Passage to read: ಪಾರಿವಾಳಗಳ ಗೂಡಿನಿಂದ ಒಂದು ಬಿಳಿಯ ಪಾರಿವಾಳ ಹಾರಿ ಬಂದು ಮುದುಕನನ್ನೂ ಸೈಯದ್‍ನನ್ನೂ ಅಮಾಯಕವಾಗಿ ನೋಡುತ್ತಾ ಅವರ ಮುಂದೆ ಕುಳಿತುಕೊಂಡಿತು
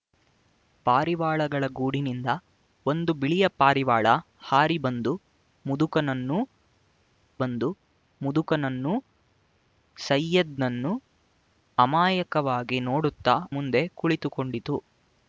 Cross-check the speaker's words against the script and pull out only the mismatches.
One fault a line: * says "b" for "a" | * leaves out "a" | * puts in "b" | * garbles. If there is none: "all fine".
* puts in "ಬಂದು ಮುದುಕನನ್ನೂ"
* leaves out "ಅವರ"